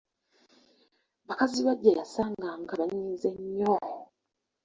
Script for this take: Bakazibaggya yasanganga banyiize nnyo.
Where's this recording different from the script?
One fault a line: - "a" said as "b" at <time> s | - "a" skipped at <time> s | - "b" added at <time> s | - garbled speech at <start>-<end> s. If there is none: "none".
none